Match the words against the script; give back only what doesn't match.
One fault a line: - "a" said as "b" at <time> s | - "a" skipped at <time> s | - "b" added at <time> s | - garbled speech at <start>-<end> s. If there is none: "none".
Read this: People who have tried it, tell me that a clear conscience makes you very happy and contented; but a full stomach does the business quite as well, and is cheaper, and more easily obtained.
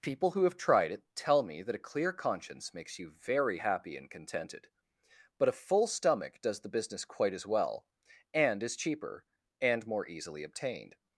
none